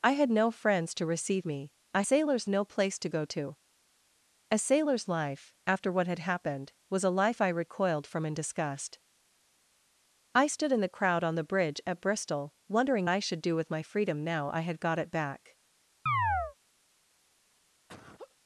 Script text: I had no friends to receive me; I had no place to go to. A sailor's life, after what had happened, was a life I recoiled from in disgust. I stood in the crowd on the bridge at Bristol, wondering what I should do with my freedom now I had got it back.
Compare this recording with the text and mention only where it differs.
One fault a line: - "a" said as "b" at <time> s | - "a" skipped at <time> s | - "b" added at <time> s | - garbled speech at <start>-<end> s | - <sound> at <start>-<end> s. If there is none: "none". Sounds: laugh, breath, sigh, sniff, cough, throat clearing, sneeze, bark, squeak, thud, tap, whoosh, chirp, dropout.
- "had" said as "sailor's" at 2.0 s
- "what" skipped at 13.1 s
- chirp at 16.1-16.6 s
- laugh at 17.9-18.4 s